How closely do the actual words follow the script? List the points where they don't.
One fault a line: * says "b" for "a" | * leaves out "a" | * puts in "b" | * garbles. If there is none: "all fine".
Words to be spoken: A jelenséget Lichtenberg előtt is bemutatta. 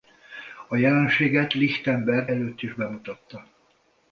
all fine